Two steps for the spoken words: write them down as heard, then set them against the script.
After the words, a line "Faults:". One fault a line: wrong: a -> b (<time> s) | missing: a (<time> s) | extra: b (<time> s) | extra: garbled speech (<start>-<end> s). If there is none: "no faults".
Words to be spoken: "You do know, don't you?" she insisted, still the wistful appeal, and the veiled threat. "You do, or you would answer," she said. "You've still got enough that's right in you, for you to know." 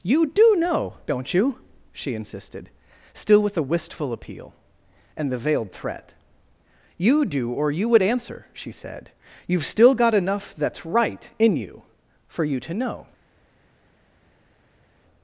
"You do know, don't you?" she insisted, still with the wistful appeal, and the veiled threat. "You do, or you would answer," she said. "You've still got enough that's right in you, for you to know."
Faults:
extra: with (3.4 s)